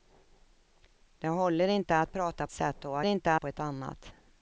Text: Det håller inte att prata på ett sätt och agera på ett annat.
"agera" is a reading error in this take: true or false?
true